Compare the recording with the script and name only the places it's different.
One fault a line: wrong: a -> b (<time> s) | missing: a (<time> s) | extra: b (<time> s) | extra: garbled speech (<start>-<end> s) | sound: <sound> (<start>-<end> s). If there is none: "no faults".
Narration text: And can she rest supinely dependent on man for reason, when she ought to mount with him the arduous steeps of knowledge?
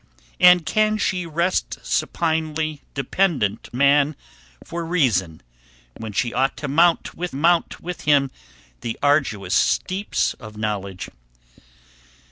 missing: on (3.7 s)
extra: mount with (7.3 s)